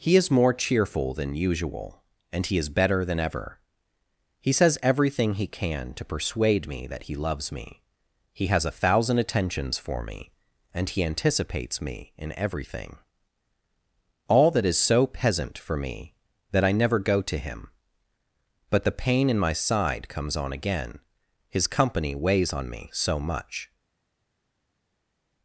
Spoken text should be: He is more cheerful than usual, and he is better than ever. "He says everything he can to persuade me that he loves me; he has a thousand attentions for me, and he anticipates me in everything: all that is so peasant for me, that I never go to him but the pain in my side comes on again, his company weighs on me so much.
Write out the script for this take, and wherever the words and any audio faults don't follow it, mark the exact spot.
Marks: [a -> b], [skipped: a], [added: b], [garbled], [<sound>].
He is more cheerful than usual, and he is better than ever. "He says everything he can to persuade me that he loves me; he has a thousand attentions for me, and he anticipates me in everything: all that is so peasant for me, that I never go to him but the pain in my side comes on again, his company weighs on me so much.